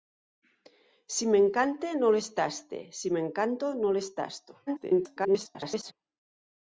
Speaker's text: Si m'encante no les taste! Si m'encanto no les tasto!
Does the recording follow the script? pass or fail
fail